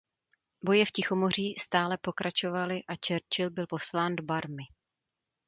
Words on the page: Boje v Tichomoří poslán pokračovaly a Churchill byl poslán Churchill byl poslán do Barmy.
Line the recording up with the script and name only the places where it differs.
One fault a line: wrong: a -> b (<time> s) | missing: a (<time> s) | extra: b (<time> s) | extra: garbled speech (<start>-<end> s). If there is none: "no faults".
wrong: poslán -> stále (1.6 s)
missing: Churchill byl poslán (4.2 s)